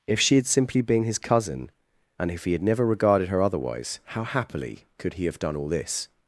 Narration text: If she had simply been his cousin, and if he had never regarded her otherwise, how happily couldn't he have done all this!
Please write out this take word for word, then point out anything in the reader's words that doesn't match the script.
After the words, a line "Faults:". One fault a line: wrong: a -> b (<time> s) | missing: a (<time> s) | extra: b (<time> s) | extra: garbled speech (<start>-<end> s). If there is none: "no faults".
If she had simply been his cousin, and if he had never regarded her otherwise, how happily could he have done all this!
Faults:
wrong: couldn't -> could (5.0 s)